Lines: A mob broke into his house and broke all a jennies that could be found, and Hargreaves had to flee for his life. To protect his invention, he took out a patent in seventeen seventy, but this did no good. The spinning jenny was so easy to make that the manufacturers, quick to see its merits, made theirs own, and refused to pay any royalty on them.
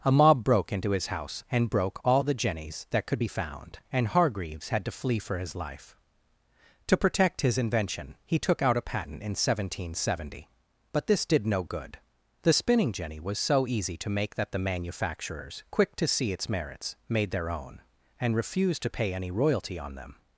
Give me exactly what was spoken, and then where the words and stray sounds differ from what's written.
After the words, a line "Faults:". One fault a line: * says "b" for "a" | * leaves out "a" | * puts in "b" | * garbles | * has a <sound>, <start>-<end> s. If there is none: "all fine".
A mob broke into his house and broke all the jennies that could be found, and Hargreaves had to flee for his life. To protect his invention, he took out a patent in seventeen seventy, but this did no good. The spinning jenny was so easy to make that the manufacturers, quick to see its merits, made their own, and refused to pay any royalty on them.
Faults:
* says "the" for "a"
* says "their" for "theirs"